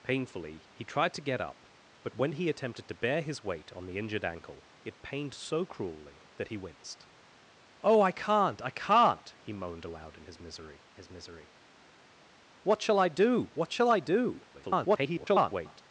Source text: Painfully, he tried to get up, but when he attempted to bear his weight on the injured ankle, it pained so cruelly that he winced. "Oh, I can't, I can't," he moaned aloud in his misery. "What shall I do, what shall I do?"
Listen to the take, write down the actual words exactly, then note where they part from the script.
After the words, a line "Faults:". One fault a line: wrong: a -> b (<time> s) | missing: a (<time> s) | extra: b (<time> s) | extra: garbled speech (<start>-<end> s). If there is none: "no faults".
Painfully, he tried to get up, but when he attempted to bear his weight on the injured ankle, it pained so cruelly that he winced. "Oh, I can't, I can't," he moaned aloud in his misery his misery. "What shall I do, what shall I do?" [garbled]
Faults:
extra: his misery (10.9 s)
extra: garbled speech (14.5-15.8 s)